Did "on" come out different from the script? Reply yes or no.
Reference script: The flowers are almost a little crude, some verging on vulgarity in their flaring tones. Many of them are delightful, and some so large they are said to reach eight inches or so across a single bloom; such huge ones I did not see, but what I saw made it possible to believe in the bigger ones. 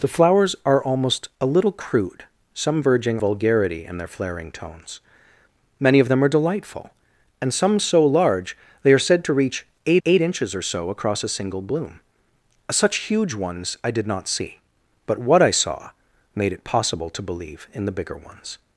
yes